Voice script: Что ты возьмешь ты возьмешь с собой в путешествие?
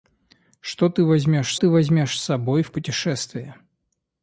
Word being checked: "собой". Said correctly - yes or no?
yes